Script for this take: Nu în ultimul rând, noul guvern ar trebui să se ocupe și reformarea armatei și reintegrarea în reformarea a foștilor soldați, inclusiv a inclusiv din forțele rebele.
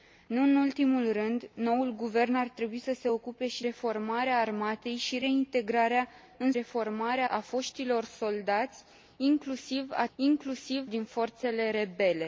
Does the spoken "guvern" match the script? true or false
true